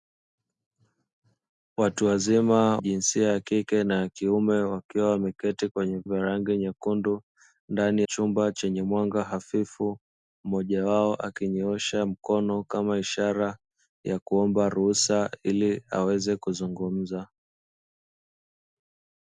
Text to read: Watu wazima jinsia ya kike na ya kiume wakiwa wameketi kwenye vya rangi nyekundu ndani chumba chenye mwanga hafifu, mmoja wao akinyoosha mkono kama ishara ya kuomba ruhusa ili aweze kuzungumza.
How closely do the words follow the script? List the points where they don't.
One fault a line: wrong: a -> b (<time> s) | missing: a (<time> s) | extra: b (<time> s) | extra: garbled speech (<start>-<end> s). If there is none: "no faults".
no faults